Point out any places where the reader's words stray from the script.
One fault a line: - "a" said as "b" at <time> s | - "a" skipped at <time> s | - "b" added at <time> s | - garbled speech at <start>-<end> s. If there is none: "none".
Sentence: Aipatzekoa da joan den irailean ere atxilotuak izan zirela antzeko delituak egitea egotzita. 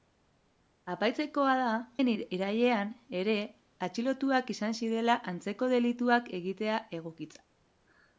- "joan" skipped at 1.7 s